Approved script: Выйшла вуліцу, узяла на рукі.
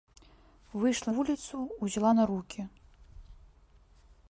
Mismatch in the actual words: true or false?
false